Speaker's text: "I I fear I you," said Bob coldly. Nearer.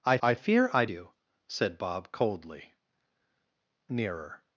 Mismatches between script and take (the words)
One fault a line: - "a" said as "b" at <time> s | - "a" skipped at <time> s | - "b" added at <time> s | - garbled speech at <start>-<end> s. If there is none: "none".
none